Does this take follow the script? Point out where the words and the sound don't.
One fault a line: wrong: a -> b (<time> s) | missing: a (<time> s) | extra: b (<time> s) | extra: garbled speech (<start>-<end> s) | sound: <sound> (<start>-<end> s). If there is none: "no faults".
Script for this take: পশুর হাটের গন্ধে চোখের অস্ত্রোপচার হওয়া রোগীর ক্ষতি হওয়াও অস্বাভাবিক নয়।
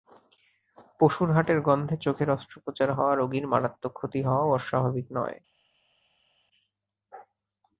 extra: মারাত্মক (3.5 s)